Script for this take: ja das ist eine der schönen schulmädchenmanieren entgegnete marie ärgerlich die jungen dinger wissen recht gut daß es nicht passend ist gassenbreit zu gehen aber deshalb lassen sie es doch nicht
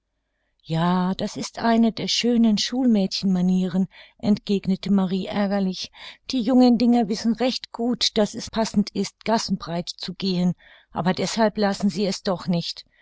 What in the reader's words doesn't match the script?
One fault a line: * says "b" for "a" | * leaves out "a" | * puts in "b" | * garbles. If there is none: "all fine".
* leaves out "nicht"